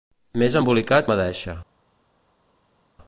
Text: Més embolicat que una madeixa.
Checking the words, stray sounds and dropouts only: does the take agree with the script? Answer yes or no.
no